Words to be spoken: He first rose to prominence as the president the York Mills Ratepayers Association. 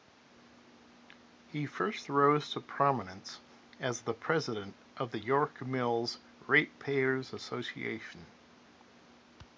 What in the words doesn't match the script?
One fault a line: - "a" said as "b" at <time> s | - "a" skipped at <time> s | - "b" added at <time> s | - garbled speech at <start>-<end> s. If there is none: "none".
- "of" added at 5.0 s